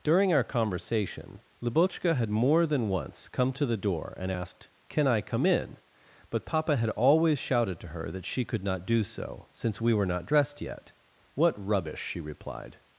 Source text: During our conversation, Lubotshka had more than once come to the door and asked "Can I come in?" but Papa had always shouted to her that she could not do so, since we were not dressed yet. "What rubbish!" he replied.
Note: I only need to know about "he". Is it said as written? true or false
false